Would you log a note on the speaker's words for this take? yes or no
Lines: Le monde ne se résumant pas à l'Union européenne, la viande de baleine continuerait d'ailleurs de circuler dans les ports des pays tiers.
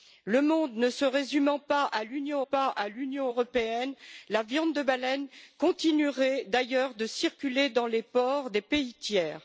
yes